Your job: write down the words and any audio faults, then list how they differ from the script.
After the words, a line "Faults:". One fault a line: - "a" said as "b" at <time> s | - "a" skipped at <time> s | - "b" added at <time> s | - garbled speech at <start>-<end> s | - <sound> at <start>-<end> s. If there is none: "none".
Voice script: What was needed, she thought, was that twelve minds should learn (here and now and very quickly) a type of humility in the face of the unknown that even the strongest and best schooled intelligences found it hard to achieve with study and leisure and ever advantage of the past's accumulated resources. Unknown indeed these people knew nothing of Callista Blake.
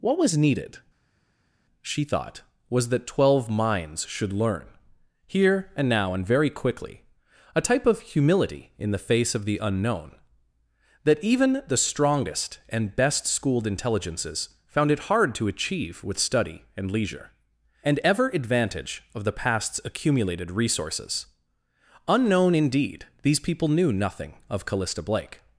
What was needed, she thought, was that twelve minds should learn (here and now and very quickly) a type of humility in the face of the unknown that even the strongest and best schooled intelligences found it hard to achieve with study and leisure and ever advantage of the past's accumulated resources. Unknown indeed these people knew nothing of Callista Blake.
Faults:
none